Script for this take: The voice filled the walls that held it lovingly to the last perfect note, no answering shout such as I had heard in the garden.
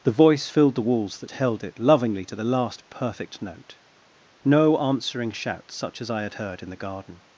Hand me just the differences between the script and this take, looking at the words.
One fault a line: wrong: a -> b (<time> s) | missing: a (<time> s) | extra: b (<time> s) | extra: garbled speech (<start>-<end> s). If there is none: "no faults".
no faults